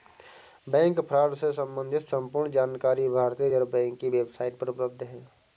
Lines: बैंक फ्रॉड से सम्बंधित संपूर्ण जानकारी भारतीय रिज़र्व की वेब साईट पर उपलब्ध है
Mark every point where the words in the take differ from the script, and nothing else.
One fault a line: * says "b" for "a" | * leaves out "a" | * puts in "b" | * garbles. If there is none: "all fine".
* puts in "बैंक"